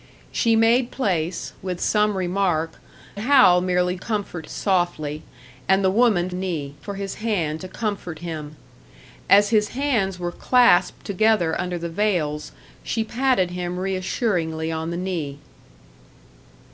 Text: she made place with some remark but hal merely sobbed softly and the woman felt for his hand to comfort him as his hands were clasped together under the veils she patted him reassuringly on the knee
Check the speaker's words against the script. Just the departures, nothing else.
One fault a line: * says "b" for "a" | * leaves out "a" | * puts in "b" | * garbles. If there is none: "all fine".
* leaves out "but"
* says "comfort" for "sobbed"
* says "knee" for "felt"